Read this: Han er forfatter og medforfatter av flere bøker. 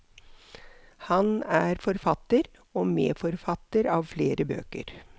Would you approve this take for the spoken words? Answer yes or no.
yes